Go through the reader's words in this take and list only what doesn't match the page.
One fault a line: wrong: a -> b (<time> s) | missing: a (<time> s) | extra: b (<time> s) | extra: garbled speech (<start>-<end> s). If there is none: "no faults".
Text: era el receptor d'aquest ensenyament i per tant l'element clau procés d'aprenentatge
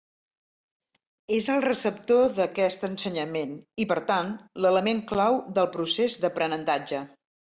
wrong: era -> és (1.4 s)
extra: del (5.6 s)